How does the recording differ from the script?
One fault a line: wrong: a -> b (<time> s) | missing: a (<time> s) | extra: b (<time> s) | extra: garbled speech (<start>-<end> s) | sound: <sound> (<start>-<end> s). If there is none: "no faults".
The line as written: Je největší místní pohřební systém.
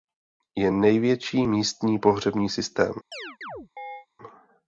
sound: chirp (3.1-4.1 s)